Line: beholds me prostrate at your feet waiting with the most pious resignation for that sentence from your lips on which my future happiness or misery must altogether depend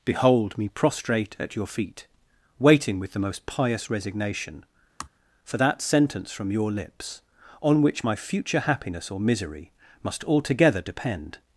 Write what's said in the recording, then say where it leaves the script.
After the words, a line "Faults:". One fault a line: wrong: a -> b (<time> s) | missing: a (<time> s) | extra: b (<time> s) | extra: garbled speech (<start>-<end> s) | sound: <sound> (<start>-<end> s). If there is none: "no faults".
behold me prostrate at your feet waiting with the most pious resignation for that sentence from your lips on which my future happiness or misery must altogether depend
Faults:
wrong: beholds -> behold (0.1 s)
sound: sigh (5.0-5.1 s)